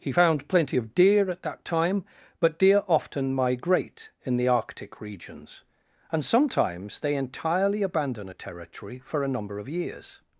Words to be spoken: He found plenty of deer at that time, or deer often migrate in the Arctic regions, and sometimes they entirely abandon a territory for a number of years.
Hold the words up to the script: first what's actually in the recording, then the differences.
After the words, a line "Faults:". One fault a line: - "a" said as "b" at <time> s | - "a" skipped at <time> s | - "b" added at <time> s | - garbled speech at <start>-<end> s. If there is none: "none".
He found plenty of deer at that time, but deer often migrate in the Arctic regions, and sometimes they entirely abandon a territory for a number of years.
Faults:
- "or" said as "but" at 2.4 s